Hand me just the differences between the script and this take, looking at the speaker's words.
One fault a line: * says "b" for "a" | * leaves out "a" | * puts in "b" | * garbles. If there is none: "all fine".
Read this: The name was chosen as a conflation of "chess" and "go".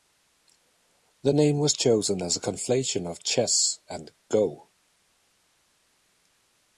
all fine